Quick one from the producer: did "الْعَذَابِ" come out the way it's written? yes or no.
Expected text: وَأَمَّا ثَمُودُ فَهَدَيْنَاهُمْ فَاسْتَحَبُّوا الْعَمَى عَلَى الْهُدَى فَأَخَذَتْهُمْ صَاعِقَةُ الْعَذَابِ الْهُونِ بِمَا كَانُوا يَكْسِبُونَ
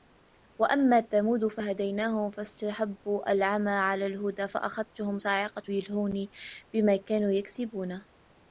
no